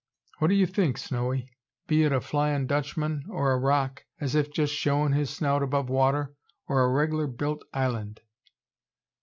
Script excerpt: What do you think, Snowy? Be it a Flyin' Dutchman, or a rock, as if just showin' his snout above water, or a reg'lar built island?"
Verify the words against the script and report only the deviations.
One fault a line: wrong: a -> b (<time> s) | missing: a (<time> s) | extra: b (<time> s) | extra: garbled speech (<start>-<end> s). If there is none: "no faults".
no faults